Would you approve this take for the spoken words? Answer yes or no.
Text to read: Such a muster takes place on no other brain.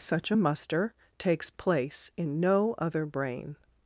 no